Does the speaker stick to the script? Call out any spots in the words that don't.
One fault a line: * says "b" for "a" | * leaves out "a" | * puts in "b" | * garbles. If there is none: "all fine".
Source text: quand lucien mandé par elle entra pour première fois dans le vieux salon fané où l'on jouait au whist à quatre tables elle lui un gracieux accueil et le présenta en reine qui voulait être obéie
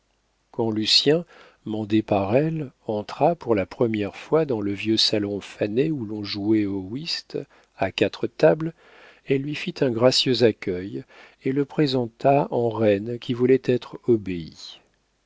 * puts in "la"
* puts in "fit"